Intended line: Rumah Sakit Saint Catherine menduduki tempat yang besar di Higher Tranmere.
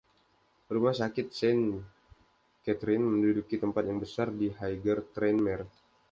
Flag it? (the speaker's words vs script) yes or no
no